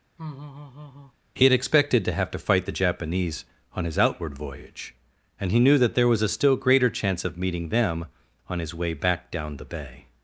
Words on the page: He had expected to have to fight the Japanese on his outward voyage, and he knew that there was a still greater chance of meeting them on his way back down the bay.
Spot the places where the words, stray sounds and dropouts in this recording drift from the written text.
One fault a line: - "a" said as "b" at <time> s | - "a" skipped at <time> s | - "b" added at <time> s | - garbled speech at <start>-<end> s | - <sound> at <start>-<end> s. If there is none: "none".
- laugh at 0.2-1.1 s